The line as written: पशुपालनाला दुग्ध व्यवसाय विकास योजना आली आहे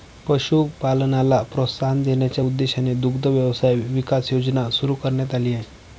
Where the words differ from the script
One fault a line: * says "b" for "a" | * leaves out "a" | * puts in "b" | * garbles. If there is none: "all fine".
* puts in "प्रोत्साहन देण्याच्या उद्देशाने"
* puts in "सुरू करण्यात"